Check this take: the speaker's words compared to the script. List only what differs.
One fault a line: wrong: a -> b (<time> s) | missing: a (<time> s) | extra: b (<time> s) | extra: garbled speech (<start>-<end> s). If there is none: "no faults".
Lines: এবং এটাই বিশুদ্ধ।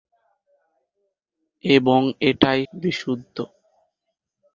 no faults